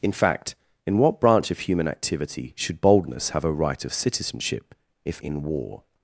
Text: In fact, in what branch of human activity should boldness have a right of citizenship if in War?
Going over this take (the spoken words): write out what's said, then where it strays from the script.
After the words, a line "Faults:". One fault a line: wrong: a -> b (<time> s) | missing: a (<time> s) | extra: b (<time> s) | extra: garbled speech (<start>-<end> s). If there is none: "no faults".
In fact, in what branch of human activity should boldness have a right of citizenship if in War?
Faults:
no faults